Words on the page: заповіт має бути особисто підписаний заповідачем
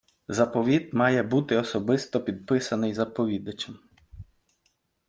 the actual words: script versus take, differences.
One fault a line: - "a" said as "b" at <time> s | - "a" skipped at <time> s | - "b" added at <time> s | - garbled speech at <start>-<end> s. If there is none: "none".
none